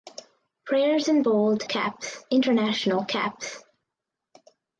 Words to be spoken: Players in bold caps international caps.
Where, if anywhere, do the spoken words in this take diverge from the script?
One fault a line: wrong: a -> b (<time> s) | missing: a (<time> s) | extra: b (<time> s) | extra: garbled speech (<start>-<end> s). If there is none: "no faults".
no faults